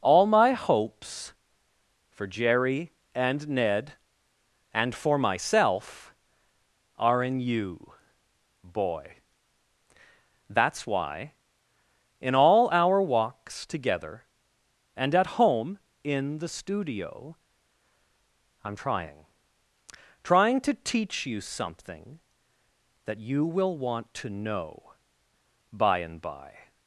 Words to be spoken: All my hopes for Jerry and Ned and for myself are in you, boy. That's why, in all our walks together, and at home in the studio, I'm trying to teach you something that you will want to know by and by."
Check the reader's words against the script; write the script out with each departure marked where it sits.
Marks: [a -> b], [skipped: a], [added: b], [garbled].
All my hopes for Jerry and Ned and for myself are in you, boy. That's why, in all our walks together, and at home in the studio, I'm trying [added: trying] to teach you something that you will want to know by and by."